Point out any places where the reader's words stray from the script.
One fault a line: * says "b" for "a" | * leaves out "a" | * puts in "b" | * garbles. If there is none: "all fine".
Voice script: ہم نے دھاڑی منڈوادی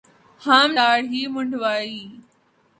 * leaves out "نے"